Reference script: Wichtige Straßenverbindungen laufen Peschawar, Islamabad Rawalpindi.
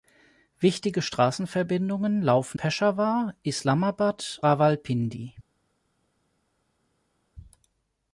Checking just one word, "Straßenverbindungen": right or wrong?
right